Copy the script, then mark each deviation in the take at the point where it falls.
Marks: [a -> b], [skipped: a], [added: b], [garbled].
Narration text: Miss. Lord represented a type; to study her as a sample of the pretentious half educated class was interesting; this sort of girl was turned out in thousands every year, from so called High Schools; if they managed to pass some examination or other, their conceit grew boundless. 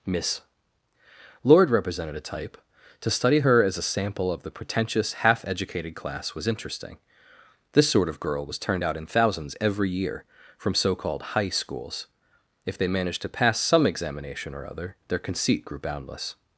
Miss. Lord represented a type; to study her as a sample of the pretentious half educated class was interesting; this sort of girl was turned out in thousands every year, from so called High Schools; if they managed to pass some examination or other, their conceit grew boundless.